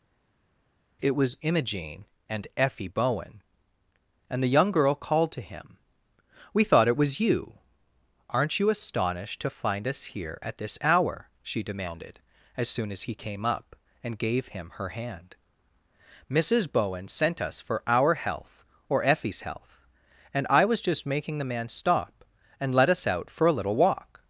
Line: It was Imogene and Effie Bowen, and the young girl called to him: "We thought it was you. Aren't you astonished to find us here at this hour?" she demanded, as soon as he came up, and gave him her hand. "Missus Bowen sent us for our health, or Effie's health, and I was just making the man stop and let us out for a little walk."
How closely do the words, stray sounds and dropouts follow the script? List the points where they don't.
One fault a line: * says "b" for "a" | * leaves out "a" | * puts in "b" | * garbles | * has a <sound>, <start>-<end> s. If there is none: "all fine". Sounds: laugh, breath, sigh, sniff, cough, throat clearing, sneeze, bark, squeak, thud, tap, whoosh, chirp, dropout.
all fine